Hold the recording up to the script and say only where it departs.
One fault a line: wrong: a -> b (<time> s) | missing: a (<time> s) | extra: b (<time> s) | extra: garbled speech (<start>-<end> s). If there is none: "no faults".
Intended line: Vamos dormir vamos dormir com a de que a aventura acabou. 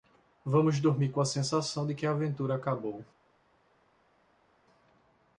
missing: vamos dormir (1.1 s)
extra: sensação (1.2 s)